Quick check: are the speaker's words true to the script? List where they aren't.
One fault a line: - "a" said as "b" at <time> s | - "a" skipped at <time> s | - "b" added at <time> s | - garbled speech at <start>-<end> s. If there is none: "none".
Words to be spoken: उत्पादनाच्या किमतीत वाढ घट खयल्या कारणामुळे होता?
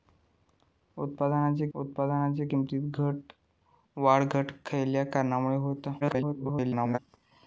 - "उत्पादनाच्या" added at 1.7 s
- garbled speech at 6.0-7.0 s